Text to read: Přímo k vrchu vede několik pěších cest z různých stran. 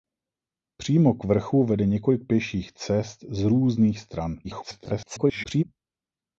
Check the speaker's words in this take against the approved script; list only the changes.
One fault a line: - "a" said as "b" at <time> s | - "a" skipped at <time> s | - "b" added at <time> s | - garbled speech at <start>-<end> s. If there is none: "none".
- garbled speech at 4.4-5.6 s